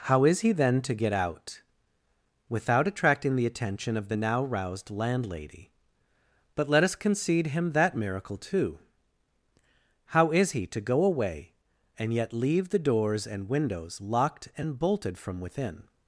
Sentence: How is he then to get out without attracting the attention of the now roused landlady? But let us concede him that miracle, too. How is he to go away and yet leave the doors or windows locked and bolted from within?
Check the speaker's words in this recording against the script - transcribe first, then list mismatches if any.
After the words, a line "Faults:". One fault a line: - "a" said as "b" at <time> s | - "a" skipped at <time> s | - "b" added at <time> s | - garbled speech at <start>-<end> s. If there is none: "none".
How is he then to get out without attracting the attention of the now roused landlady? But let us concede him that miracle, too. How is he to go away and yet leave the doors and windows locked and bolted from within?
Faults:
- "or" said as "and" at 13.3 s